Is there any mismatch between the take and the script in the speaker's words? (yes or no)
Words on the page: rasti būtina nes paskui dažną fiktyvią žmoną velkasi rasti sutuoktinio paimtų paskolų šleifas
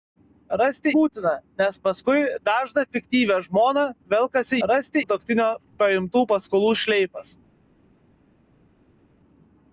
no